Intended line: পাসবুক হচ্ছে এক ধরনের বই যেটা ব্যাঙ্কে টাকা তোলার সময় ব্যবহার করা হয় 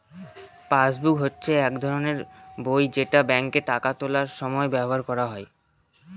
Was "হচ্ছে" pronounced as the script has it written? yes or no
yes